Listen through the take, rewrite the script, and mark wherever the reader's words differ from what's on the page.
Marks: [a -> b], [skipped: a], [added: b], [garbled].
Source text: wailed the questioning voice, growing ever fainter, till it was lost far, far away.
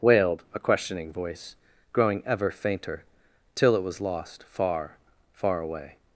wailed [the -> a] questioning voice, growing ever fainter, till it was lost far, far away.